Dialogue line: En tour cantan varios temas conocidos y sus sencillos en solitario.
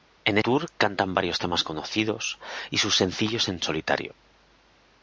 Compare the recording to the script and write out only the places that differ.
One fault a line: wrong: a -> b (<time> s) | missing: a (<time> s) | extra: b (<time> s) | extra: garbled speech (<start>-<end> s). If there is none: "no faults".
no faults